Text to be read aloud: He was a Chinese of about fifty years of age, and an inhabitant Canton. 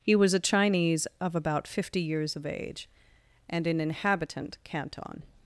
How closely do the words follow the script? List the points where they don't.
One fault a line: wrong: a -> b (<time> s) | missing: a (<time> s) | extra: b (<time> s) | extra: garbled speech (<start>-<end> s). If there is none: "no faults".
no faults